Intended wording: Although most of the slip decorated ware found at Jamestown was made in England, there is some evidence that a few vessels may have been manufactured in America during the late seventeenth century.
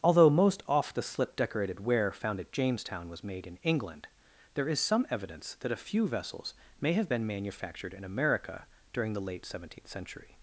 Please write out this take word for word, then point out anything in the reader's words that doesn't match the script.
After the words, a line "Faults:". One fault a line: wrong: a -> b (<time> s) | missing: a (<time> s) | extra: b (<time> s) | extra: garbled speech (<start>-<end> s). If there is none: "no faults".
Although most off the slip decorated ware found at Jamestown was made in England, there is some evidence that a few vessels may have been manufactured in America during the late seventeenth century.
Faults:
wrong: of -> off (0.7 s)